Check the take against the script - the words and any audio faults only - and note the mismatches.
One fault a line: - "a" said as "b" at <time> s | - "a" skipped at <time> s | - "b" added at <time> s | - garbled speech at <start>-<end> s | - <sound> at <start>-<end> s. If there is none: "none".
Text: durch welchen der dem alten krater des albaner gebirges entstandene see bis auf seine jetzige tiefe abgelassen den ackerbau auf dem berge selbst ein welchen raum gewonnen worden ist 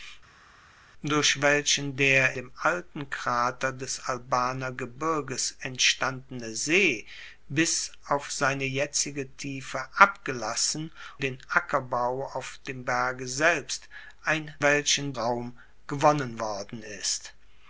none